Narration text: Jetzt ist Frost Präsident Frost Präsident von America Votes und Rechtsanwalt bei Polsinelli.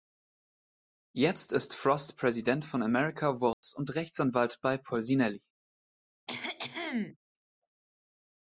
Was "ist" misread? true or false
false